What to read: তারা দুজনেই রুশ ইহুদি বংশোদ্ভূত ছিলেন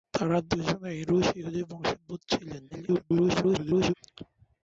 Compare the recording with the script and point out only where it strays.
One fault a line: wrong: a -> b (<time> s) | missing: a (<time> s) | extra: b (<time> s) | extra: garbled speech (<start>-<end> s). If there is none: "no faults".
extra: garbled speech (2.7-3.9 s)